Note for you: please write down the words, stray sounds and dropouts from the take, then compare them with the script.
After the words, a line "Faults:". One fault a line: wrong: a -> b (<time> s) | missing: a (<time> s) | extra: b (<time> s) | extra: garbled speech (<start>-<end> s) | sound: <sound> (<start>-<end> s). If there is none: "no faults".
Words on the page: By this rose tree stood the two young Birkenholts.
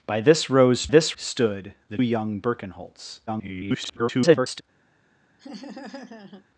By this rose this stood the young Birkenholts. [garbled]
Faults:
wrong: tree -> this (0.9 s)
missing: two (2.0 s)
extra: garbled speech (3.3-4.6 s)
sound: laugh (5.4-6.5 s)